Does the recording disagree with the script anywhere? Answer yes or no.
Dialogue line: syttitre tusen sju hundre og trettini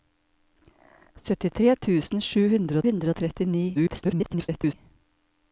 yes